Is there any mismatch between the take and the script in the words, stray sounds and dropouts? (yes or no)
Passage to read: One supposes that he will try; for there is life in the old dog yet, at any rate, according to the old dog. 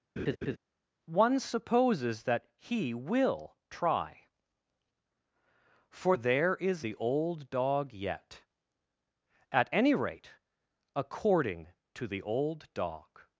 yes